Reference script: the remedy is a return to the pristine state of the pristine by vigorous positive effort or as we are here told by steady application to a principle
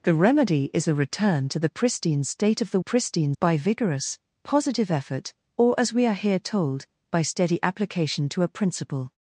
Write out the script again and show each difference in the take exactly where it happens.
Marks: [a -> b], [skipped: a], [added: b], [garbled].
the remedy is a return to the pristine state of the pristine by vigorous positive effort or as we are here told by steady application to a principle